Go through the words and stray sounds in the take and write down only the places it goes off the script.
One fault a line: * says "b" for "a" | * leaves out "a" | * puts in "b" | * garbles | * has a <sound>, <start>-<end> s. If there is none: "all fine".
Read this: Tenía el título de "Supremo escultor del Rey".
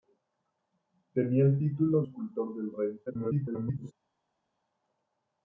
* leaves out "de Supremo"
* garbles